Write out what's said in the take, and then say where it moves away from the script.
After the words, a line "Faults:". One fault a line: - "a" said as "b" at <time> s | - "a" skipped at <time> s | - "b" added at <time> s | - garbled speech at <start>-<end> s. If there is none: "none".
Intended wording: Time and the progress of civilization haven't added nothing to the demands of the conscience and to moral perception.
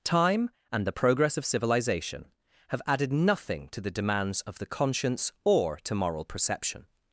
Time and the progress of civilization have added nothing to the demands of the conscience or to moral perception.
Faults:
- "haven't" said as "have" at 2.7 s
- "and" said as "or" at 5.4 s